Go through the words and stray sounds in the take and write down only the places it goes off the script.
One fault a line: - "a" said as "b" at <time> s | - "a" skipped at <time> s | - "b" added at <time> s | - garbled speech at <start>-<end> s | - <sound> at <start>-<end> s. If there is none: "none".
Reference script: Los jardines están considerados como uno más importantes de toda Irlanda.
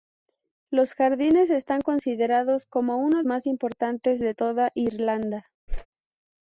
- whoosh at 5.7-5.9 s